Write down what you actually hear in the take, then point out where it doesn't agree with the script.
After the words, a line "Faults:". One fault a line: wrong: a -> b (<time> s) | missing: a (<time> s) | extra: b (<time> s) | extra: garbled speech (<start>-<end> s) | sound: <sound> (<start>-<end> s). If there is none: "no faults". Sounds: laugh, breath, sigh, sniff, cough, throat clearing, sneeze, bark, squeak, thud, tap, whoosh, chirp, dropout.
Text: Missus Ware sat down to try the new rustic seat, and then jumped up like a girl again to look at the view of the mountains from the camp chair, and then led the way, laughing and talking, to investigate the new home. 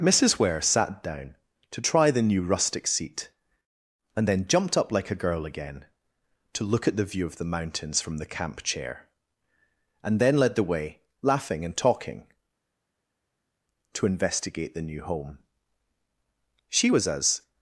Missus Ware sat down to try the new rustic seat, and then jumped up like a girl again to look at the view of the mountains from the camp chair, and then led the way, laughing and talking, to investigate the new home. She was as
Faults:
extra: She was as (16.7 s)